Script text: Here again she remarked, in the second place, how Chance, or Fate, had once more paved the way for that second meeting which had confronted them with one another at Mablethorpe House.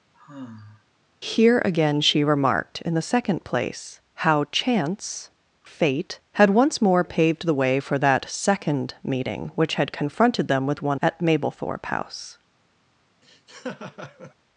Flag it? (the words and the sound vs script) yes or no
yes